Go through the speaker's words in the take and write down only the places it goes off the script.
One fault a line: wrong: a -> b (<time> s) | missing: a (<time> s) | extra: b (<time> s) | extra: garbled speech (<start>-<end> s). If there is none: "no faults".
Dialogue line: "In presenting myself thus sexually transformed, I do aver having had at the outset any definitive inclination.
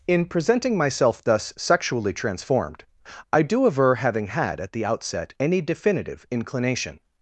no faults